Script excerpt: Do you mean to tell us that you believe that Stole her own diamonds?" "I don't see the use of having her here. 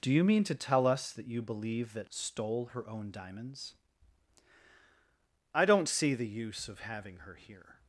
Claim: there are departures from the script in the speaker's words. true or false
false